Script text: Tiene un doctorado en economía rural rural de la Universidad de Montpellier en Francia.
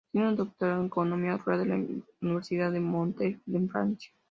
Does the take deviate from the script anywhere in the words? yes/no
yes